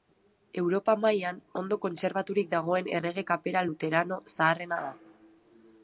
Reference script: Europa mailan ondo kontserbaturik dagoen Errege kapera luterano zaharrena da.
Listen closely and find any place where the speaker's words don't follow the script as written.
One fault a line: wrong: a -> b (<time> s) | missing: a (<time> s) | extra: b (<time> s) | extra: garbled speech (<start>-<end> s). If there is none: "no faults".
no faults